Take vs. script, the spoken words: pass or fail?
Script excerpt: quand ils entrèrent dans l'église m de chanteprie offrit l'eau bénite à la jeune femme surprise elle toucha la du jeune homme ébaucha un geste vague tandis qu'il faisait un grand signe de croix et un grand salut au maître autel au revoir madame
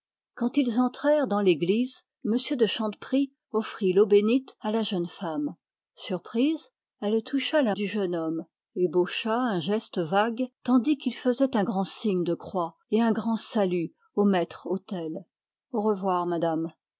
pass